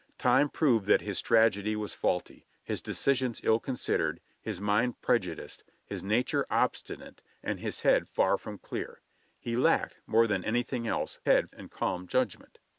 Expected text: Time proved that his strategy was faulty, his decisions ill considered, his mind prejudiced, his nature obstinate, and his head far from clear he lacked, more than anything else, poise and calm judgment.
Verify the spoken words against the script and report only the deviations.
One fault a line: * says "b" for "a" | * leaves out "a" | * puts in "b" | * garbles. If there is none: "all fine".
* says "head" for "poise"